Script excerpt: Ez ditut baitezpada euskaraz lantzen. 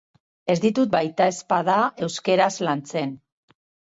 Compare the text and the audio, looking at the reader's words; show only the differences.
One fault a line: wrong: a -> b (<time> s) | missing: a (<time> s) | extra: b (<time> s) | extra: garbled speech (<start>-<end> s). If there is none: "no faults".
no faults